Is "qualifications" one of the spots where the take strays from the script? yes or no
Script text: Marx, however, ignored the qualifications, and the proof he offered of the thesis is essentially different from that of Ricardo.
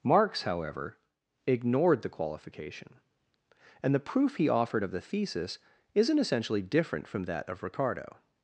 yes